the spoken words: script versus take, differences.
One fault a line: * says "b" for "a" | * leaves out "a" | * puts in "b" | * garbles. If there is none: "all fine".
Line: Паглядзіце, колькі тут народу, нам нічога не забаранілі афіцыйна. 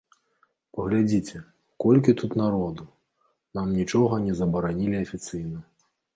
all fine